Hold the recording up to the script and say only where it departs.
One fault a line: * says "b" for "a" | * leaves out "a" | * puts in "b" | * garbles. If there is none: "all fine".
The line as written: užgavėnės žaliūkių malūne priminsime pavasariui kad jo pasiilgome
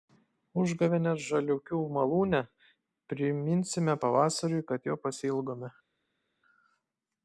all fine